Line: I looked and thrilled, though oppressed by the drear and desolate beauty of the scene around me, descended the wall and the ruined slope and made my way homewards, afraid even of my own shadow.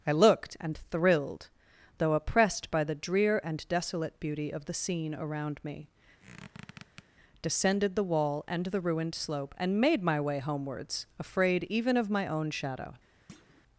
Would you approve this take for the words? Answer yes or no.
yes